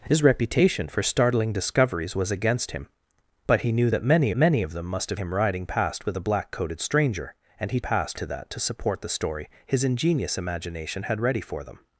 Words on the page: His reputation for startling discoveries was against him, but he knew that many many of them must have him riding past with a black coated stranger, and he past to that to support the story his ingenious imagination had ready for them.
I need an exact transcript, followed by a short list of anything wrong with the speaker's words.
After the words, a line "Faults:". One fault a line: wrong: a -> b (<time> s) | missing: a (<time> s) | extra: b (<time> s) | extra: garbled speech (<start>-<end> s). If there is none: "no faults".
His reputation for startling discoveries was against him, but he knew that many many of them must have him riding past with a black coated stranger, and he past to that to support the story his ingenious imagination had ready for them.
Faults:
no faults